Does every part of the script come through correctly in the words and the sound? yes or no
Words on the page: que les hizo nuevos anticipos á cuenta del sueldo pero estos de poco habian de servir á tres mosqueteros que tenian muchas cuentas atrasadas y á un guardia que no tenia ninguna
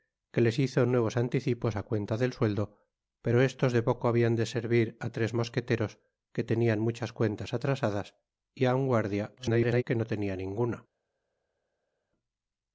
no